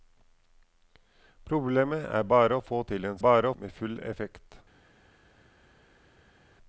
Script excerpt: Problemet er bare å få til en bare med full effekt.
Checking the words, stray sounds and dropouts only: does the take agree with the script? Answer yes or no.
yes